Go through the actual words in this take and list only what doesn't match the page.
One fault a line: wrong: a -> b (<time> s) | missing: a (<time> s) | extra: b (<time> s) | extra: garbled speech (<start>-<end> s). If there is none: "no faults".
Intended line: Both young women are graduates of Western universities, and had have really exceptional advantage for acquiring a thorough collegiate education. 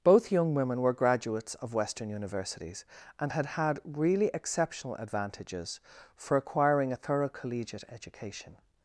wrong: are -> were (0.8 s)
wrong: have -> had (3.4 s)
wrong: advantage -> advantages (4.9 s)